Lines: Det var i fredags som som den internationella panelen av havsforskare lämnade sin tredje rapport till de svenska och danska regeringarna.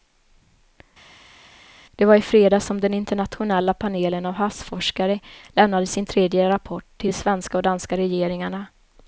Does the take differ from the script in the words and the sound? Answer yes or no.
yes